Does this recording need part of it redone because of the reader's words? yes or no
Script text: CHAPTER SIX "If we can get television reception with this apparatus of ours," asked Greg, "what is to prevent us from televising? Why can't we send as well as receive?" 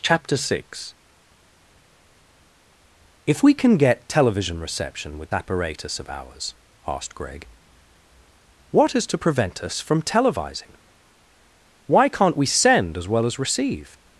yes